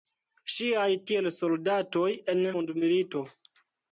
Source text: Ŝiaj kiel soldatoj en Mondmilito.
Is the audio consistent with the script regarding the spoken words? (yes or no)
yes